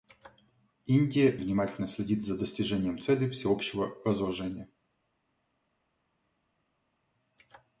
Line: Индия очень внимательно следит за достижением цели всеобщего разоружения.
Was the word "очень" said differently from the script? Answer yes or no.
yes